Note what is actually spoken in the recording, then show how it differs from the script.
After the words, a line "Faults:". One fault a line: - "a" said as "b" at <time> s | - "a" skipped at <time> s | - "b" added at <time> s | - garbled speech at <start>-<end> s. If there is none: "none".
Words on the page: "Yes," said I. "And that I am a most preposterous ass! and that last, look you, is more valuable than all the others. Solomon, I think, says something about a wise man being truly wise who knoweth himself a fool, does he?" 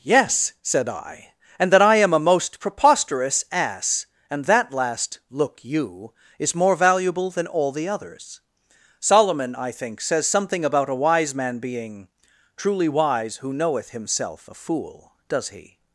"Yes," said I. "And that I am a most preposterous ass! and that last, look you, is more valuable than all the others. Solomon, I think, says something about a wise man being truly wise who knoweth himself a fool, does he?"
Faults:
none